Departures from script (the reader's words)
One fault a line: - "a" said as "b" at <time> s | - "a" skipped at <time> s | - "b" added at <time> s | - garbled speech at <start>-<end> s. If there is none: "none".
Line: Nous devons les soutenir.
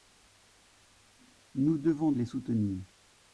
none